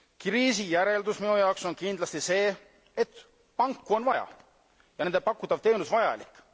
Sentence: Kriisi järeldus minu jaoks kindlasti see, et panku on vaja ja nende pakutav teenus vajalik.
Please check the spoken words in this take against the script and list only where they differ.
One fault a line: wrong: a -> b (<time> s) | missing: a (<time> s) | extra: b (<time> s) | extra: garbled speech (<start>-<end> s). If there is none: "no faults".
extra: on (1.6 s)